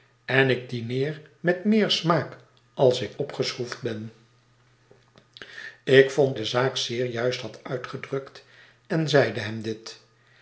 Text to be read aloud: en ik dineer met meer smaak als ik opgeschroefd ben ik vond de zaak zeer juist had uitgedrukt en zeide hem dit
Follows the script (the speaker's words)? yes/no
yes